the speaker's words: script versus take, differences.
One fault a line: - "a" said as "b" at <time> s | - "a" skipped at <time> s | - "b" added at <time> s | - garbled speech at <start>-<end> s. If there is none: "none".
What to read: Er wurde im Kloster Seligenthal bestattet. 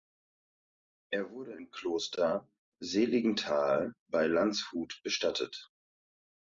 - "bei Landshut" added at 4.1 s